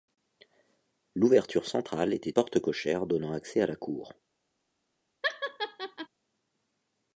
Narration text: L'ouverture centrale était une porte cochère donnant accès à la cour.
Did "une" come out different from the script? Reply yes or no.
yes